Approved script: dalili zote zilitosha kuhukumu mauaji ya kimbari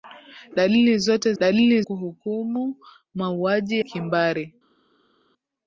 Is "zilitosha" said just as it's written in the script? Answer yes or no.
no